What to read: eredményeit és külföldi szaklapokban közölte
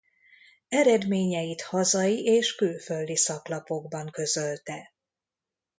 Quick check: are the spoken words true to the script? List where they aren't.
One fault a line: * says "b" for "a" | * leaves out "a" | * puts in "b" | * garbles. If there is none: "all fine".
* puts in "hazai"